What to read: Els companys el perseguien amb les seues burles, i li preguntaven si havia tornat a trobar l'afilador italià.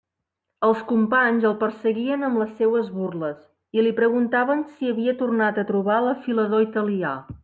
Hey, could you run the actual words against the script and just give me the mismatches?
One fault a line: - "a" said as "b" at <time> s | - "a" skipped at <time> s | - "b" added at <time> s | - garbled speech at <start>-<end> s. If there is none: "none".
none